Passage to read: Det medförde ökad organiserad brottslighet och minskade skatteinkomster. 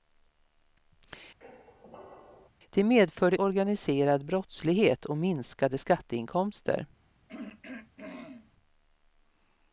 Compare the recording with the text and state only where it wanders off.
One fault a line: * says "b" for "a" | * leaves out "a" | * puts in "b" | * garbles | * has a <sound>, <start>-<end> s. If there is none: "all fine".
* has a squeak, 1.4-2.5 s
* leaves out "ökad"
* has a throat clearing, 7.3-8.5 s